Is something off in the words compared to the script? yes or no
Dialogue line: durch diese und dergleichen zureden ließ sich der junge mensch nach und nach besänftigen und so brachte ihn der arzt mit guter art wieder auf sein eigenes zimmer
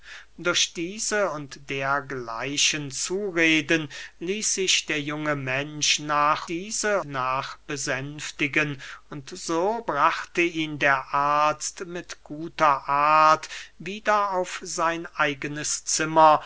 yes